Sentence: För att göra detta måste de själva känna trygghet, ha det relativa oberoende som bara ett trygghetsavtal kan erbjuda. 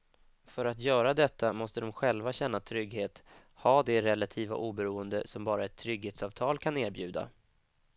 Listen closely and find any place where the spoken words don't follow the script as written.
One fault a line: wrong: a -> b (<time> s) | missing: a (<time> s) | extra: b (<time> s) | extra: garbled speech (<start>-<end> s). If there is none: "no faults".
no faults